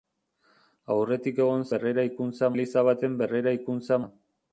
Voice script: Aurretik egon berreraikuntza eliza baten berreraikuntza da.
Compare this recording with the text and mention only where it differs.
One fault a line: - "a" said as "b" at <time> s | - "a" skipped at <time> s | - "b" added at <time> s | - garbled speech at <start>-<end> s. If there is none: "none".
none